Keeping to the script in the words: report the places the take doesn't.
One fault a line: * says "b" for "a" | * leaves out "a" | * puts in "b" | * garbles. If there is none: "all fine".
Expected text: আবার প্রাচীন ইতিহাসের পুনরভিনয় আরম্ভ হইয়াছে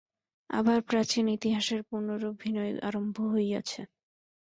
all fine